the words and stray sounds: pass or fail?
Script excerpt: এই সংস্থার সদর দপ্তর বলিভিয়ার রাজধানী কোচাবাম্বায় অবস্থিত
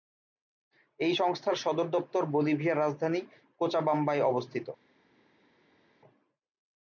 pass